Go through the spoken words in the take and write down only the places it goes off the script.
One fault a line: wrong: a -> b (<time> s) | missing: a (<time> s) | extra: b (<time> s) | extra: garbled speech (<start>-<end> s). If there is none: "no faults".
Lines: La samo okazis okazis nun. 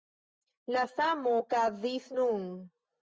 missing: okazis (2.1 s)